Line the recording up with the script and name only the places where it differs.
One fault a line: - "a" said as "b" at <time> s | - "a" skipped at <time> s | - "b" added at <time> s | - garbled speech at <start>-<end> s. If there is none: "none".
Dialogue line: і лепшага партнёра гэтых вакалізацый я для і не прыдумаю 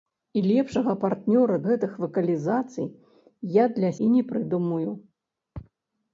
none